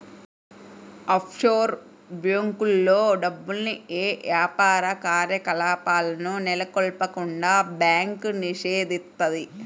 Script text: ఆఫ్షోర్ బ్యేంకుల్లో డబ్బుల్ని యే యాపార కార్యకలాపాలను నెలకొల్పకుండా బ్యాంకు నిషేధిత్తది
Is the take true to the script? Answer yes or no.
yes